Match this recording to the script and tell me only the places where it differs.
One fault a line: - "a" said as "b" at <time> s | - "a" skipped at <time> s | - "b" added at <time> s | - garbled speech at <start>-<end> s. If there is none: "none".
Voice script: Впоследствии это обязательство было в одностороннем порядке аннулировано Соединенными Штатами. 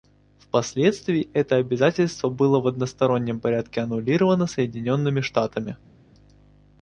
none